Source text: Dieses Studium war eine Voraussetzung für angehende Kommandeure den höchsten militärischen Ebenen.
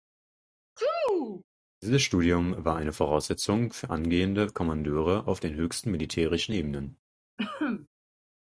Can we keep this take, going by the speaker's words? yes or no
no